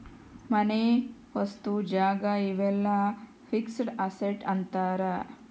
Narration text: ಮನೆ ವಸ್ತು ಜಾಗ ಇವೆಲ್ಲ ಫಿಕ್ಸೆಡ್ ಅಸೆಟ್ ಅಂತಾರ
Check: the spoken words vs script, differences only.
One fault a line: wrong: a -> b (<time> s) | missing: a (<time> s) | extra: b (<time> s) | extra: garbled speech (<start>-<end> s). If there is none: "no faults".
no faults